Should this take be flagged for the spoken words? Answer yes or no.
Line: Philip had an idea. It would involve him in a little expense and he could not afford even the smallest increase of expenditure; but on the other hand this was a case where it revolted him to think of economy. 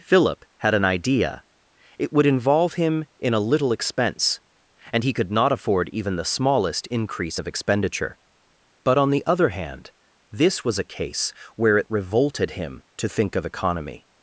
no